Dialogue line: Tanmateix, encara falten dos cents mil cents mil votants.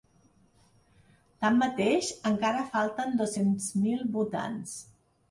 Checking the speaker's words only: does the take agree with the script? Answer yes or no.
no